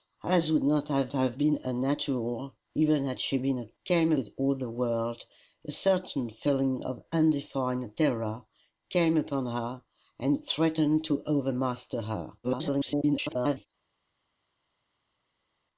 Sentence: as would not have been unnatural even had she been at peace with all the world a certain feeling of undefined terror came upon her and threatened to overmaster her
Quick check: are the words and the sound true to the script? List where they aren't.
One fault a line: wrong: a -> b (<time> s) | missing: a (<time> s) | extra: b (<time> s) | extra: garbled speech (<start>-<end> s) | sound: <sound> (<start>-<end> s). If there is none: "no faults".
extra: have (1.1 s)
wrong: peace -> came (3.8 s)
extra: garbled speech (12.4-13.7 s)